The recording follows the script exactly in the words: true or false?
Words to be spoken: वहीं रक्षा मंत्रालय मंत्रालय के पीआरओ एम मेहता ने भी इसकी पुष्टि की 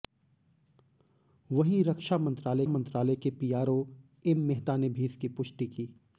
true